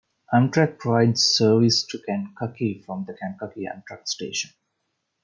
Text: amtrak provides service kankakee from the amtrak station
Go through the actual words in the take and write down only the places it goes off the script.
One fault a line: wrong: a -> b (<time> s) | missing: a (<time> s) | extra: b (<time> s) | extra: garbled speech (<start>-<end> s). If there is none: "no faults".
extra: to (1.9 s)
extra: kankakee (3.1 s)